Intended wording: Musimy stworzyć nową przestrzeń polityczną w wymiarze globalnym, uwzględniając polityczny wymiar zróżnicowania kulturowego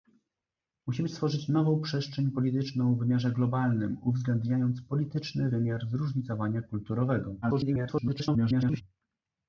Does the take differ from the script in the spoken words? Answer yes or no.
yes